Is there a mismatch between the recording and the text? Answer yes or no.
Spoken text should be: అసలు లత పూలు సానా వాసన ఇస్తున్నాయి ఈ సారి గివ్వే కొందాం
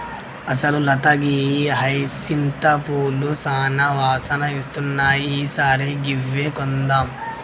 yes